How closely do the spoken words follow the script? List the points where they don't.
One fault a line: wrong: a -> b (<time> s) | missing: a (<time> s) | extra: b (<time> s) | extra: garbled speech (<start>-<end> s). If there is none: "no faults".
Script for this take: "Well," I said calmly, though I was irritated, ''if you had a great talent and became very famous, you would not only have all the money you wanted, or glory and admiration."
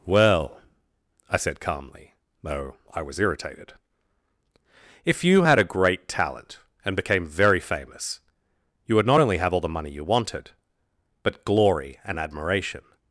wrong: or -> but (11.2 s)